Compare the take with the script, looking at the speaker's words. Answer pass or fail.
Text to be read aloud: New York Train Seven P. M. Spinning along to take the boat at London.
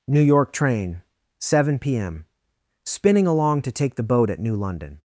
fail